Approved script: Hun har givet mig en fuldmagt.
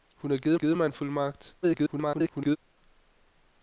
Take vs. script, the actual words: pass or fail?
fail